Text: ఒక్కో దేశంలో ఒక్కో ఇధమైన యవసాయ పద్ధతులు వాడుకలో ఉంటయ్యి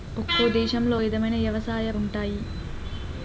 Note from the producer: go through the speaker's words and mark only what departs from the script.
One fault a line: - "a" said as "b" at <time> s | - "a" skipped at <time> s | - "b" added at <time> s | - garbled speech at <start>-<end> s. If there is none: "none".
- "ఒక్కో" skipped at 0.9 s
- "పద్ధతులు వాడుకలో" skipped at 1.9 s